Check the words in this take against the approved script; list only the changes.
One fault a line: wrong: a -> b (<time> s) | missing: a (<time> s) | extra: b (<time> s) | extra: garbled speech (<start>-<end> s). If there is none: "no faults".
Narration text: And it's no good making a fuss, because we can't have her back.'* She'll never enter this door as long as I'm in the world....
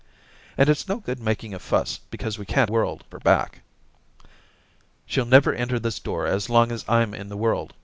wrong: have -> world (2.7 s)